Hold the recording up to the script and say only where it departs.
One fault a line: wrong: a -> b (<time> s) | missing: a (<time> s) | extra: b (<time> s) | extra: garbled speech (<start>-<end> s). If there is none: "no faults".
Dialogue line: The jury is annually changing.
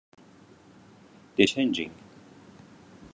missing: jury is annually (1.4 s)